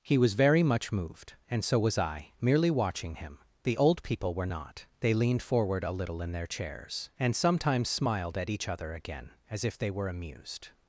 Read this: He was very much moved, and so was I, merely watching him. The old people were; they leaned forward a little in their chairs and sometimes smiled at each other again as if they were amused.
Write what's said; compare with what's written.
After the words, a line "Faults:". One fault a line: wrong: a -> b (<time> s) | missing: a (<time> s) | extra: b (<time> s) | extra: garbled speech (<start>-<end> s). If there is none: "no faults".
He was very much moved, and so was I, merely watching him. The old people were not; they leaned forward a little in their chairs and sometimes smiled at each other again as if they were amused.
Faults:
extra: not (4.5 s)